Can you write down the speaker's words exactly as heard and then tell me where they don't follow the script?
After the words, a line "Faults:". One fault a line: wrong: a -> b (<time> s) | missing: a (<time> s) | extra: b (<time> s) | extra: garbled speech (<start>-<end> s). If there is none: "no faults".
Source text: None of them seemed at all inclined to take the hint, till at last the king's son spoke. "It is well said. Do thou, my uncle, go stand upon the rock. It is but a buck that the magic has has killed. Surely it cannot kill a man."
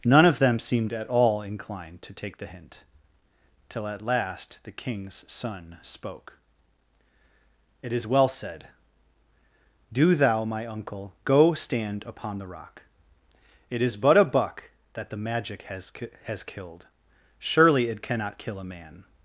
None of them seemed at all inclined to take the hint, till at last the king's son spoke. "It is well said. Do thou, my uncle, go stand upon the rock. It is but a buck that the magic has has killed. Surely it cannot kill a man."
Faults:
no faults